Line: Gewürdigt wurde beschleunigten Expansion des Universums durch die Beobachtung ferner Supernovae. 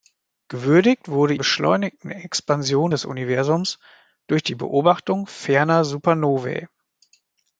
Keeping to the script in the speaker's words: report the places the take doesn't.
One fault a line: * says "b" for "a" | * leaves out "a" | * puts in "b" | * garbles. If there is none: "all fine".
all fine